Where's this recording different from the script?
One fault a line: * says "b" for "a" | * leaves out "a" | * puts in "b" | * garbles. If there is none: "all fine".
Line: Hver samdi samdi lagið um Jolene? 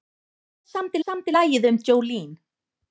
all fine